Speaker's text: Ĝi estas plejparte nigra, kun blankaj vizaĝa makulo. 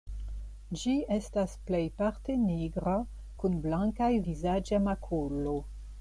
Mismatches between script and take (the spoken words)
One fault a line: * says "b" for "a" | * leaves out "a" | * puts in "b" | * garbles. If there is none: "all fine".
all fine